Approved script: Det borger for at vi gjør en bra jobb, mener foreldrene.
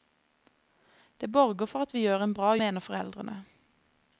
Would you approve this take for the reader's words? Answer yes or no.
no